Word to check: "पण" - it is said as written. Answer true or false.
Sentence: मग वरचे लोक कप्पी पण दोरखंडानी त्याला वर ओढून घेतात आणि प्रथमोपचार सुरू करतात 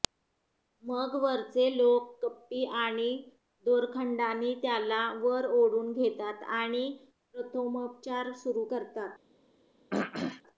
false